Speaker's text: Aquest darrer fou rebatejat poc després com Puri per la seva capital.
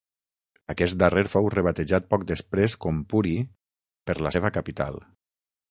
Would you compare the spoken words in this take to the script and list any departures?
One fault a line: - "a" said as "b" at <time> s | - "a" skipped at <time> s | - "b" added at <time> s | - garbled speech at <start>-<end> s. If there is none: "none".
none